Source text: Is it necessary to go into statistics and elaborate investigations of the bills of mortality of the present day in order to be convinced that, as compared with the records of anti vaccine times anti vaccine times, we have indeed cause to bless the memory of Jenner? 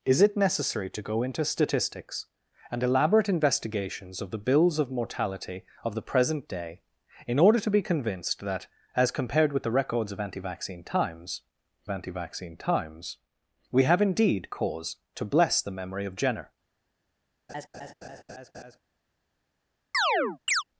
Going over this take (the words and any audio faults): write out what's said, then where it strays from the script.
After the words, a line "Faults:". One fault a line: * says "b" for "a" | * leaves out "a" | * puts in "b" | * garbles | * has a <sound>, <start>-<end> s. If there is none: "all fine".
Is it necessary to go into statistics and elaborate investigations of the bills of mortality of the present day in order to be convinced that, as compared with the records of anti vaccine times anti vaccine times, we have indeed cause to bless the memory of Jenner?
Faults:
* has a laugh, 17.5-18.8 s
* has a chirp, 19.9-20.6 s